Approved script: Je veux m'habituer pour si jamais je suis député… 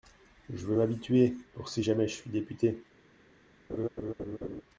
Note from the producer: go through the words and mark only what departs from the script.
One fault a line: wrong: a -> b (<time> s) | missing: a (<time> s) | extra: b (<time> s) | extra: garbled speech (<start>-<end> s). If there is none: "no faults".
no faults